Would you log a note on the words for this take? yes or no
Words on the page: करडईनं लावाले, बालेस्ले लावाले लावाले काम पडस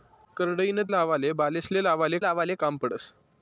no